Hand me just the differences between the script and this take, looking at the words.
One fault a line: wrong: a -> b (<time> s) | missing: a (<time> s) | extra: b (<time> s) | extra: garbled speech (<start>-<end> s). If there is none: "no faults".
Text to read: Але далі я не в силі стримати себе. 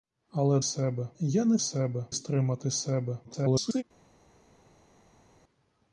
wrong: далі -> себе (0.6 s)
wrong: силі -> себе (1.6 s)
extra: garbled speech (3.2-3.8 s)